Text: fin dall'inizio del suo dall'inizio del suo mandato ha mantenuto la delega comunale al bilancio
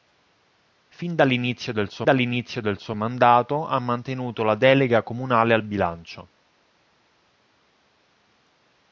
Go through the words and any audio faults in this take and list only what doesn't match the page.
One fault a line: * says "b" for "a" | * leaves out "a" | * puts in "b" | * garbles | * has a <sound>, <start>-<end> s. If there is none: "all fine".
all fine